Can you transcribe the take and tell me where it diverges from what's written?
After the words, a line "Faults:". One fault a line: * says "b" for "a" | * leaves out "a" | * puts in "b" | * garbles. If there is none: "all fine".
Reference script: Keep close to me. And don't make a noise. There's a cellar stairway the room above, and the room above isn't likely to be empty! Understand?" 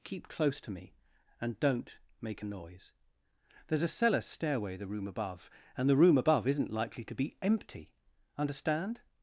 Keep close to me. And don't make a noise. There's a cellar stairway the room above, and the room above isn't likely to be empty! Understand?"
Faults:
all fine